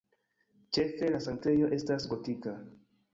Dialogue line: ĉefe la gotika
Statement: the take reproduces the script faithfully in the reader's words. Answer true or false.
false